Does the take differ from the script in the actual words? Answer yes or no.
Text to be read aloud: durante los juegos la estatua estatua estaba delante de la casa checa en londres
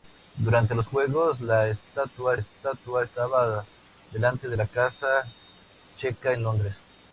no